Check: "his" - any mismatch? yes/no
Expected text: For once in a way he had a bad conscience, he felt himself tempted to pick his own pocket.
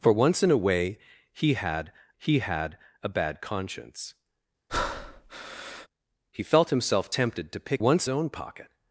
yes